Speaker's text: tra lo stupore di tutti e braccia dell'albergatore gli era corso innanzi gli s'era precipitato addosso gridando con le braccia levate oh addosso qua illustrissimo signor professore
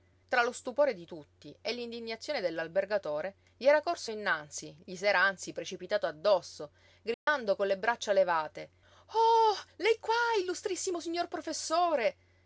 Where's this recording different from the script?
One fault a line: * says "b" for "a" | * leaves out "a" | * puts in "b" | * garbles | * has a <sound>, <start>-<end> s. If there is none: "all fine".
* says "l'indignazione" for "braccia"
* puts in "anzi"
* has a dropout, 7.1-7.3 s
* says "lei" for "addosso"